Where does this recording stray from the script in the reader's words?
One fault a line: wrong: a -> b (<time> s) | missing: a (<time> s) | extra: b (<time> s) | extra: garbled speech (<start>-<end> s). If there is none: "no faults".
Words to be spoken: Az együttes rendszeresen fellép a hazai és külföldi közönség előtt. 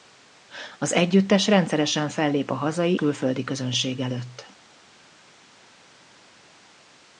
missing: és (3.0 s)